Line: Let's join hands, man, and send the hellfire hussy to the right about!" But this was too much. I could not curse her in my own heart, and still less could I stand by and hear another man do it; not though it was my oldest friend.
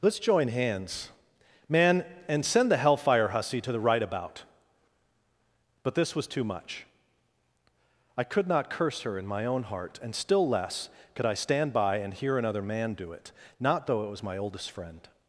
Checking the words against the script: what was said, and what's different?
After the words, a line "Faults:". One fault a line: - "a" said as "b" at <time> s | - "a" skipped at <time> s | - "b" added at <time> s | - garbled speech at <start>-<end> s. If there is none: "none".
Let's join hands, man, and send the hellfire hussy to the right about!" But this was too much. I could not curse her in my own heart, and still less could I stand by and hear another man do it; not though it was my oldest friend.
Faults:
none